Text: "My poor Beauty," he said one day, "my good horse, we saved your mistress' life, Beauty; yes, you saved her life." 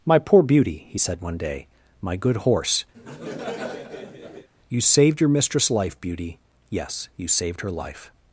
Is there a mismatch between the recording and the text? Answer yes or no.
yes